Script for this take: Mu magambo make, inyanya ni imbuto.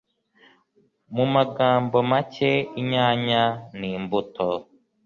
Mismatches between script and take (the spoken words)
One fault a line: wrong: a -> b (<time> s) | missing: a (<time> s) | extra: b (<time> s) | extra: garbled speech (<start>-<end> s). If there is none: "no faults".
no faults